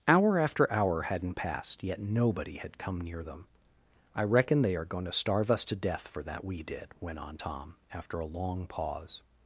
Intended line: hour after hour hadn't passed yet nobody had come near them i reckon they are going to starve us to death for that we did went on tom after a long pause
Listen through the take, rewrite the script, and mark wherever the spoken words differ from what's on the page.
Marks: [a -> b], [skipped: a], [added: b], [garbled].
hour after hour hadn't passed yet nobody had come near them i reckon they are going to starve us to death for that we did went on tom after a long pause